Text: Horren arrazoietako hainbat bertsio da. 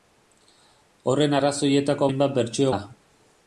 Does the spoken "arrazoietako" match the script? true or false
true